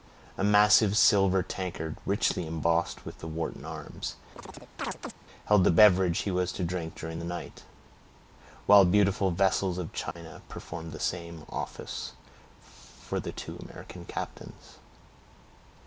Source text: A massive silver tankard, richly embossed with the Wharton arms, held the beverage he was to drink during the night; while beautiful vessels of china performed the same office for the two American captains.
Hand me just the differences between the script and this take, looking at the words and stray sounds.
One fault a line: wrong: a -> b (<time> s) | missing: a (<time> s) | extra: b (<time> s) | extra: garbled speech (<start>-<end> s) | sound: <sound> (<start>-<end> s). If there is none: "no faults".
sound: chirp (4.4-5.1 s)
sound: dropout (10.1-10.2 s)